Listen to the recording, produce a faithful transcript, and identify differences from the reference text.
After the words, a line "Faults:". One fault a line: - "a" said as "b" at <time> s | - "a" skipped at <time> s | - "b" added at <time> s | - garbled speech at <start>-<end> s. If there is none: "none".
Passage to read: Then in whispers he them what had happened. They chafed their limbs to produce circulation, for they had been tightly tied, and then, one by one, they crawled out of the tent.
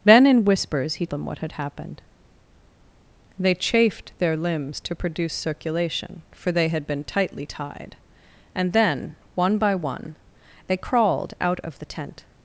Then in whispers he them what had happened. They chafed their limbs to produce circulation, for they had been tightly tied, and then, one by one, they crawled out of the tent.
Faults:
none